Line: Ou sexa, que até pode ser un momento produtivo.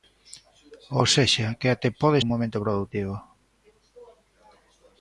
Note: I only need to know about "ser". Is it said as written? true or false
false